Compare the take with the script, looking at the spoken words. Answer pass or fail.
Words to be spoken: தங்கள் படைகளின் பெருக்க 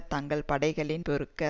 pass